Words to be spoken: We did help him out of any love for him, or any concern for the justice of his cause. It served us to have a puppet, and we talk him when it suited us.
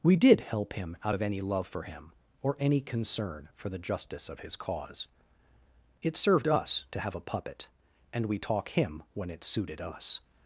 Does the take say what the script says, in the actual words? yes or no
yes